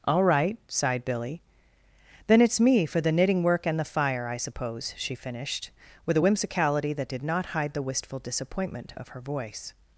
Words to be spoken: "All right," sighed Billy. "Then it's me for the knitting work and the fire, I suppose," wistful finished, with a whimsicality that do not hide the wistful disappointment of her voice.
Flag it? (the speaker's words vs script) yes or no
yes